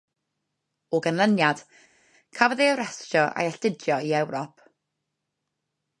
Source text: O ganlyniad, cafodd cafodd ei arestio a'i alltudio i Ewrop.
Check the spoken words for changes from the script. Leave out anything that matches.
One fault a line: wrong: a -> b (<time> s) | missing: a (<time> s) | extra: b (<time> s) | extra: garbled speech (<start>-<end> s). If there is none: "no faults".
missing: cafodd (2.6 s)